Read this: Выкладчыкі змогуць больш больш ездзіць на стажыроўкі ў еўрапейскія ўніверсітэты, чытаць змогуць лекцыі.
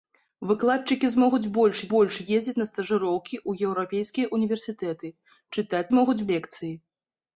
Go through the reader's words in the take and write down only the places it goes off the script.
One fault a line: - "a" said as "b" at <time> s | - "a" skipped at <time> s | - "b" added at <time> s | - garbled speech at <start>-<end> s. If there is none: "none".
none